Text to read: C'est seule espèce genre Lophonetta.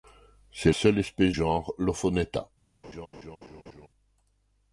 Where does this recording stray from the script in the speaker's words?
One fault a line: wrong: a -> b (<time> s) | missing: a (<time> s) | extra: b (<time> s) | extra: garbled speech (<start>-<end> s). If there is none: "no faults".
no faults